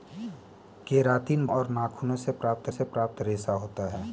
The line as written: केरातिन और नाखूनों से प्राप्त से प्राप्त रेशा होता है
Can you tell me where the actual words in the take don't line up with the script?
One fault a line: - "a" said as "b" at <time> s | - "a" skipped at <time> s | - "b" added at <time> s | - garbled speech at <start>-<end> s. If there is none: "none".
none